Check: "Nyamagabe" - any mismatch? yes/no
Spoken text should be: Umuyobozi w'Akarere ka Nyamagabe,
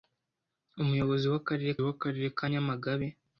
no